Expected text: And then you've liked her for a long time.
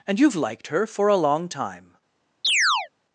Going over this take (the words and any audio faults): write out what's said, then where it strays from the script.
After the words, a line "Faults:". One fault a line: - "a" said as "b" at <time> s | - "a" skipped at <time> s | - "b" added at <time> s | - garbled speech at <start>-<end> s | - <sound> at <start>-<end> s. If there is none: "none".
And you've liked her for a long time.
Faults:
- "then" skipped at 0.2 s
- chirp at 2.4-2.9 s